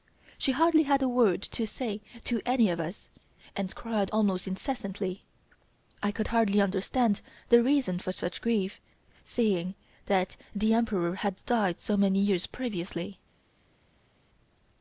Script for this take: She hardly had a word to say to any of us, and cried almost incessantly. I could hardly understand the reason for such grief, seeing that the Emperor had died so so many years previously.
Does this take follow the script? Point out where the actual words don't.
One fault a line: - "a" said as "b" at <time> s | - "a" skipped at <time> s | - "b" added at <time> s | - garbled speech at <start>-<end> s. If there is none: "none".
- "so" skipped at 12.0 s